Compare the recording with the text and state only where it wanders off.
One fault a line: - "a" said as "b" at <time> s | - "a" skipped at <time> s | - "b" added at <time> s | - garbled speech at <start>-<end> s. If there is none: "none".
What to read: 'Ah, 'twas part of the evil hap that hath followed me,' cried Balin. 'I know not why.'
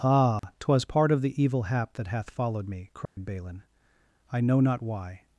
none